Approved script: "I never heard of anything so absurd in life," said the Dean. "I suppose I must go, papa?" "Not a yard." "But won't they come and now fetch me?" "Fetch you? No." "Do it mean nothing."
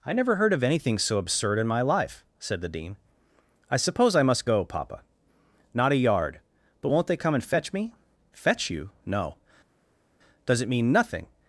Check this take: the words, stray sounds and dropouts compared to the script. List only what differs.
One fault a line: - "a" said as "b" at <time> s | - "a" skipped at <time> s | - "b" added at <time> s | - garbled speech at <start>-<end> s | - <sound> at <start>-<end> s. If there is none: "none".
- "my" added at 1.7 s
- "now" skipped at 7.4 s
- "Do" said as "Does" at 10.5 s